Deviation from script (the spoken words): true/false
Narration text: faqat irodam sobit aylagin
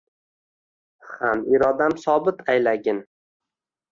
true